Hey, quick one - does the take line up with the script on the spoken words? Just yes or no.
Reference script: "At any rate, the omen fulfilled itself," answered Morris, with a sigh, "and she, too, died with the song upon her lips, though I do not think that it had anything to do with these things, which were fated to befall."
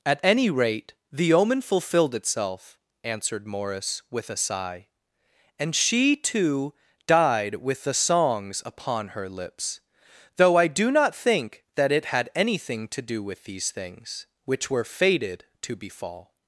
no